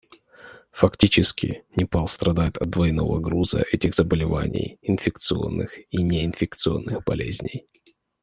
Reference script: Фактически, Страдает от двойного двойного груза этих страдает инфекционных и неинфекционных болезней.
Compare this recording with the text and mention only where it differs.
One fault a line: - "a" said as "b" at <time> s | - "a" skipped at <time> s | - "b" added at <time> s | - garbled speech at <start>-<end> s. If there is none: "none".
- "Непал" added at 1.8 s
- "двойного" skipped at 3.2 s
- "страдает" said as "заболеваний" at 4.0 s